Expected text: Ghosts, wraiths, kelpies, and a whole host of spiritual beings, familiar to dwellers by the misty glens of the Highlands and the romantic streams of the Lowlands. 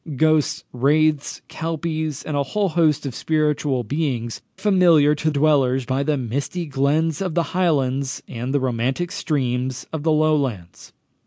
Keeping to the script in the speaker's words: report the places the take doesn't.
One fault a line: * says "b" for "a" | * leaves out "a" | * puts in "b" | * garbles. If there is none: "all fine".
all fine